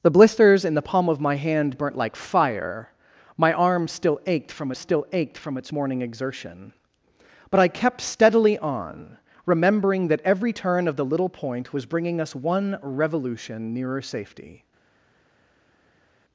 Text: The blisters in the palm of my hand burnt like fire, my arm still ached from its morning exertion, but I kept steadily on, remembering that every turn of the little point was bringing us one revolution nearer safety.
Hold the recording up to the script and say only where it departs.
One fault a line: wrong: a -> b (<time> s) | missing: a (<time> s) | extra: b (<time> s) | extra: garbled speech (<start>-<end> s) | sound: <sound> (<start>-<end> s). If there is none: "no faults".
extra: still ached from (4.7 s)